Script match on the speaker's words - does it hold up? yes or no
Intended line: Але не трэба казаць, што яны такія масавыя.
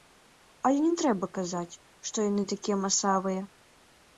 yes